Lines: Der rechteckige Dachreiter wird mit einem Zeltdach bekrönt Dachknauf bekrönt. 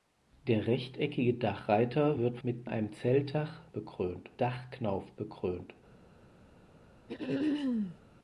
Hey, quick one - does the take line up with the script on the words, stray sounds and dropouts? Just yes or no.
no